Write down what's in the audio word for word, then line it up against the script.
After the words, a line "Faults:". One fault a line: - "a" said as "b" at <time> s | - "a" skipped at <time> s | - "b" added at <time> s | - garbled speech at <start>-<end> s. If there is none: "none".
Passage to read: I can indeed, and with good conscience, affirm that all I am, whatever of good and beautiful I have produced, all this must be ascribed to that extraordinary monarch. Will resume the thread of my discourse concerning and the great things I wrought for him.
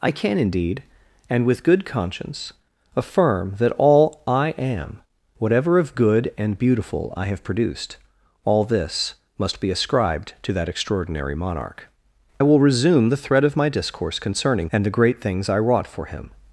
I can indeed, and with good conscience, affirm that all I am, whatever of good and beautiful I have produced, all this must be ascribed to that extraordinary monarch. Will resume the thread of my discourse concerning and the great things I wrought for him.
Faults:
none